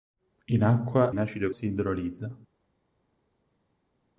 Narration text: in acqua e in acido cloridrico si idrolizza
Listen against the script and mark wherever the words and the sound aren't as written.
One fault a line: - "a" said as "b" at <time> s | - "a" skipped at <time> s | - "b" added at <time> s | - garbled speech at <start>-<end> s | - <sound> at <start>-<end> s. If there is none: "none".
- "e" skipped at 1.1 s
- "cloridrico" skipped at 1.5 s